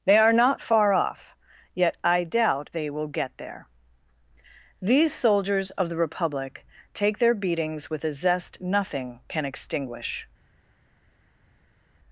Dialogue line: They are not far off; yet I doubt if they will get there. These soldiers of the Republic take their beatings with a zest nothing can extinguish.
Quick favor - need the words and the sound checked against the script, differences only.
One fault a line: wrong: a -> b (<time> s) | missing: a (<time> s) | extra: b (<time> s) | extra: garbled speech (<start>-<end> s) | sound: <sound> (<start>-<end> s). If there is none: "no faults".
missing: if (2.7 s)